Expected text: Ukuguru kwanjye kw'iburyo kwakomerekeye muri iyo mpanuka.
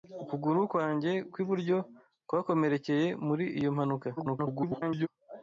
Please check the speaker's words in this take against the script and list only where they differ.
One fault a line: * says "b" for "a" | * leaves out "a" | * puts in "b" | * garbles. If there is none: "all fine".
* garbles